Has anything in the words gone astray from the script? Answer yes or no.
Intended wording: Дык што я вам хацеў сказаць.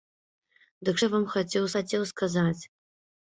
yes